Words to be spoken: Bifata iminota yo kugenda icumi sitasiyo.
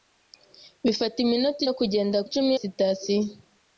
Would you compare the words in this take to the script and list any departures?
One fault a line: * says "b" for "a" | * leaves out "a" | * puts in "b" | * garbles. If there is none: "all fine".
all fine